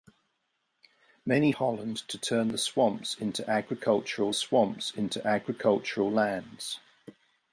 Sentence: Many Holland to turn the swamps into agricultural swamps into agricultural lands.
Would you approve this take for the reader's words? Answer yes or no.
yes